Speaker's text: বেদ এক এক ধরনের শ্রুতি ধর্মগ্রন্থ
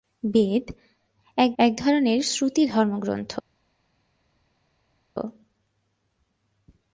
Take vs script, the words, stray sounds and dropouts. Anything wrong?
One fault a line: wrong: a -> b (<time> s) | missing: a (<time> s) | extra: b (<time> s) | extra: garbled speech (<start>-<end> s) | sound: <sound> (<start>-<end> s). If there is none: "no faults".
no faults